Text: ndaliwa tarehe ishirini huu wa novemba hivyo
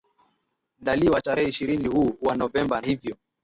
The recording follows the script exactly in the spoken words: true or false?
true